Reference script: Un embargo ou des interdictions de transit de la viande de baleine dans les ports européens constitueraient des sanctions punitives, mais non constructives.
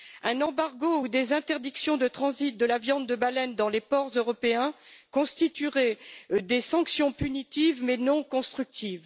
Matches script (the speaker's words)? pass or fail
pass